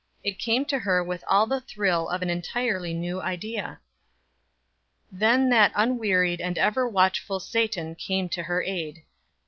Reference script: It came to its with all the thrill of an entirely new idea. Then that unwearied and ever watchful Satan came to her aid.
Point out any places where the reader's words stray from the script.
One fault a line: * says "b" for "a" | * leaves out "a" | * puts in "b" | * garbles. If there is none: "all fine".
* says "her" for "its"